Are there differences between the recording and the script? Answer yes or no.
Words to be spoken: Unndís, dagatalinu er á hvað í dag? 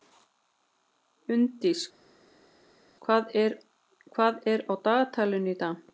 yes